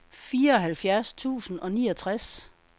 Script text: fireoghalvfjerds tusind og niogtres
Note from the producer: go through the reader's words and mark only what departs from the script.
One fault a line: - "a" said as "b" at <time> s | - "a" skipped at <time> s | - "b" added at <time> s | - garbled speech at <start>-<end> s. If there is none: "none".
none